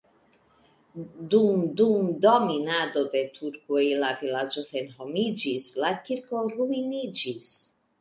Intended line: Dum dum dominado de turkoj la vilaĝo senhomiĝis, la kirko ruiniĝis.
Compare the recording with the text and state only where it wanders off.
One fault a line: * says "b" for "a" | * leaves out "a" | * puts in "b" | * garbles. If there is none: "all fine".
all fine